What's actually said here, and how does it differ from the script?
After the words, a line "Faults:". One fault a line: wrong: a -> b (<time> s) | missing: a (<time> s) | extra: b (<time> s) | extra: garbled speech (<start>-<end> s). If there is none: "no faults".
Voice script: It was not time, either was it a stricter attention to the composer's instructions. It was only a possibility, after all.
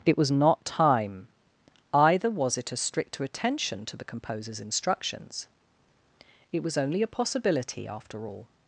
It was not time, either was it a stricter attention to the composer's instructions. It was only a possibility, after all.
Faults:
no faults